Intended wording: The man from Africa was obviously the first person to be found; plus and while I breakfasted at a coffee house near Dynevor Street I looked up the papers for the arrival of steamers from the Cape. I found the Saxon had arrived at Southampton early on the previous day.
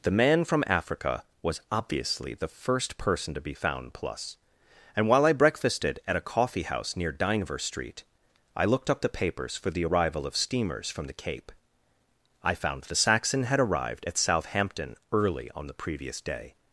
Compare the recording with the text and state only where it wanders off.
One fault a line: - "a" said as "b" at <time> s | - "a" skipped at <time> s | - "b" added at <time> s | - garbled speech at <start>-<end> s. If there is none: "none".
none